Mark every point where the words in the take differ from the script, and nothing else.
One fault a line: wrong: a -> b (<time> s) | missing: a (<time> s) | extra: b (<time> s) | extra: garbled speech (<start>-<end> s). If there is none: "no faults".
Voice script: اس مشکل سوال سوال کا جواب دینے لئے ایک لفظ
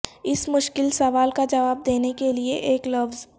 missing: سوال (1.3 s)
extra: کے (2.2 s)